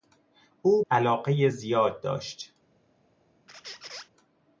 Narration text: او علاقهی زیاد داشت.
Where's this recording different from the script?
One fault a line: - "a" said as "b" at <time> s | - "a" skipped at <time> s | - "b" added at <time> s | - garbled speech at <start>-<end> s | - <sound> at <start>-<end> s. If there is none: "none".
- squeak at 3.5-4.1 s